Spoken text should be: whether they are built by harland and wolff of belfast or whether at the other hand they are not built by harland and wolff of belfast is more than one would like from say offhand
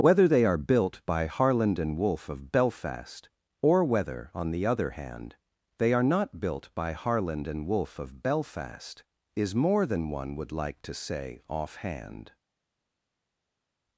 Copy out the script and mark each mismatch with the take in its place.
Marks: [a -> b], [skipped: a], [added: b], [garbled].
whether they are built by harland and wolff of belfast or whether [at -> on] the other hand they are not built by harland and wolff of belfast is more than one would like [from -> to] say offhand